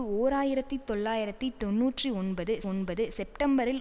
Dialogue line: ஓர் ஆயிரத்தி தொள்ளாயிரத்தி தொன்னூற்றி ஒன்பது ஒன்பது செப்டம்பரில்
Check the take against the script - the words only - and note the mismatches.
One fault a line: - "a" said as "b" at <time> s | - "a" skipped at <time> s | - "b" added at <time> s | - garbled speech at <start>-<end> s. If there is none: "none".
none